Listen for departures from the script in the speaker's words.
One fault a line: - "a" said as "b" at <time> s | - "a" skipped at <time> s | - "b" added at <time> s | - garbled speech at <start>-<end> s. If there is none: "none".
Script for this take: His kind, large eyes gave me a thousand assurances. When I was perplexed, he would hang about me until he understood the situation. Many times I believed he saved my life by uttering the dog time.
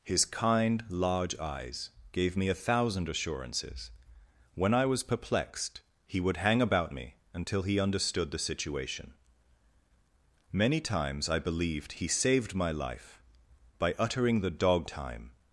none